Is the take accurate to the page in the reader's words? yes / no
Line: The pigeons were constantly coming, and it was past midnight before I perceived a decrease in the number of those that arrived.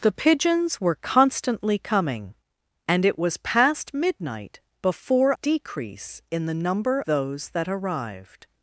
no